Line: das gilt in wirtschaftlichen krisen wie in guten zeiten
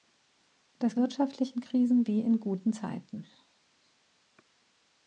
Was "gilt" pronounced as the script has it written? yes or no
no